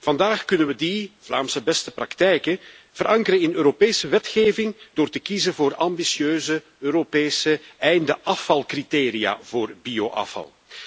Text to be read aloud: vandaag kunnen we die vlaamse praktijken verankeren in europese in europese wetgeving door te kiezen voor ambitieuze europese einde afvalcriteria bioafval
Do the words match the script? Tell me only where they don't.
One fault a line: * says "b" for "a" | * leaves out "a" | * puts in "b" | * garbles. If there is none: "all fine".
* puts in "beste"
* leaves out "in europese"
* puts in "voor"